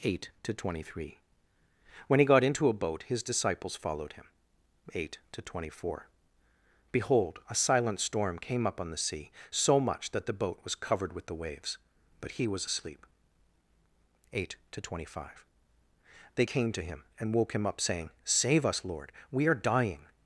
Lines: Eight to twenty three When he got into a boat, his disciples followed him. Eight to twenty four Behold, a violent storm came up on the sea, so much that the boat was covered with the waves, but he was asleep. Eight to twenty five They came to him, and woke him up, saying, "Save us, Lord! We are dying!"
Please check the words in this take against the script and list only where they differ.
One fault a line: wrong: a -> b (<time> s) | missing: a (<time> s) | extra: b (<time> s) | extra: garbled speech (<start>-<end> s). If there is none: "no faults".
wrong: violent -> silent (7.5 s)